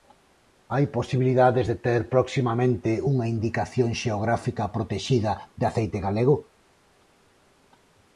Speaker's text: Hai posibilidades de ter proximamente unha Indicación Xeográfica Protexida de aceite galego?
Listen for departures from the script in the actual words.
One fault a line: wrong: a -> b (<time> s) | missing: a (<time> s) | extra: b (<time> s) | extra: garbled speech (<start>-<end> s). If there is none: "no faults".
no faults